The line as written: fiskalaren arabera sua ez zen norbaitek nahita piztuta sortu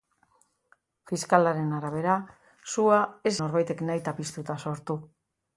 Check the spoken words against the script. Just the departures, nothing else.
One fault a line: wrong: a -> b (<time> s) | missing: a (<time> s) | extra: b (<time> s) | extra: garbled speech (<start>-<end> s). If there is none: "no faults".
missing: zen (3.4 s)